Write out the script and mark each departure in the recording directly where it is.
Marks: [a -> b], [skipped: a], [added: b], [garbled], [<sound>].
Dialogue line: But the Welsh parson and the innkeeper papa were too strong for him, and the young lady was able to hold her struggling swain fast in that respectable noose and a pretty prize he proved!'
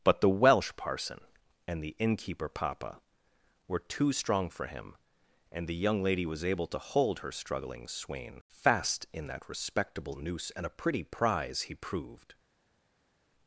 But the Welsh parson and the innkeeper papa were too strong for him, and the young lady was able to hold her struggling swain fast in that respectable noose and a pretty prize he proved!'